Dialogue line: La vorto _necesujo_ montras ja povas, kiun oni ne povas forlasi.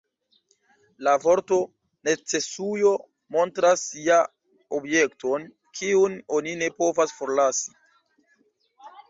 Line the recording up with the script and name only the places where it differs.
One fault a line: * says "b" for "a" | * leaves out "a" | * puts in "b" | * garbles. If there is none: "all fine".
* says "objekton" for "povas"